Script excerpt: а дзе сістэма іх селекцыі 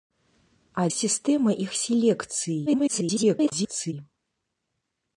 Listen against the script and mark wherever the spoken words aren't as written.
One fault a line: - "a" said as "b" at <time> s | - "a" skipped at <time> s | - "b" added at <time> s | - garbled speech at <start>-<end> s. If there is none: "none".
- "дзе" skipped at 0.8 s
- garbled speech at 2.7-3.9 s